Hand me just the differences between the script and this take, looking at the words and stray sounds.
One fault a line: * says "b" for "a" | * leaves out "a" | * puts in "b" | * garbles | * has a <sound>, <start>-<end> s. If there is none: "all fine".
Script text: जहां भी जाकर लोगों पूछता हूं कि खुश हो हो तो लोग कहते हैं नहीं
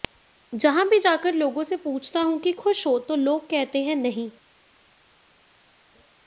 * puts in "से"
* leaves out "हो"